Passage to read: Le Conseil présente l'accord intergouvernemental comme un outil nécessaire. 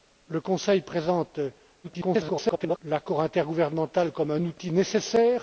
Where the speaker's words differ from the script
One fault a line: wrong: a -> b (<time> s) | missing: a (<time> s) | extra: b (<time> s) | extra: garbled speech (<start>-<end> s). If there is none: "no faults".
extra: garbled speech (1.8-2.8 s)